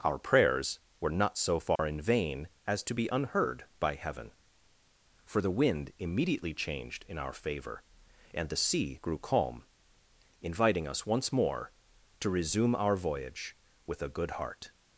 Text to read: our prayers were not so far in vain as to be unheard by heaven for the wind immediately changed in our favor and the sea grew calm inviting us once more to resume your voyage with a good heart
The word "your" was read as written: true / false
false